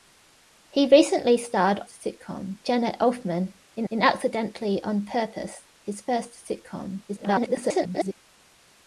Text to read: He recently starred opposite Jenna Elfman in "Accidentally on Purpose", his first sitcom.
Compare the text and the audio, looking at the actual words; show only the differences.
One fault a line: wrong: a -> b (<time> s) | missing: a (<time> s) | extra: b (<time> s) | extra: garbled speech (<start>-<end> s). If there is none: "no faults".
wrong: opposite -> sitcom (1.9 s)
extra: in (3.9 s)
extra: garbled speech (7.1-8.2 s)